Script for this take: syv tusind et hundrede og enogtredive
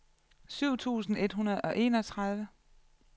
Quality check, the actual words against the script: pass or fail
pass